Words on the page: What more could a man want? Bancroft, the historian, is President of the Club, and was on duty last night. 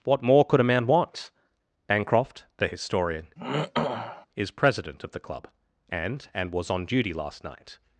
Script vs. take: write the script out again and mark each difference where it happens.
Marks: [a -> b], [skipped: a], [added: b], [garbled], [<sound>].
What more could a man want? Bancroft, the historian, [throat clearing] is President of the Club, and [added: and] was on duty last night.